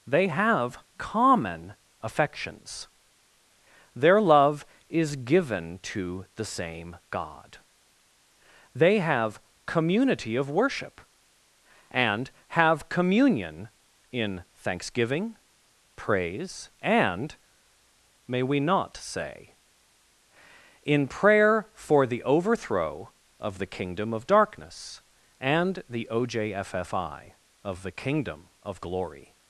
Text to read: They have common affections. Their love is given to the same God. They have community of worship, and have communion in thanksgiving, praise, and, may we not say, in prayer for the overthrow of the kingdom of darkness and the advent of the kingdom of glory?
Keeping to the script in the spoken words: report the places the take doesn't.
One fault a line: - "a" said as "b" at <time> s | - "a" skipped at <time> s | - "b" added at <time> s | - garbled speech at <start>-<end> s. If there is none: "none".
- "advent" said as "ojffi" at 26.1 s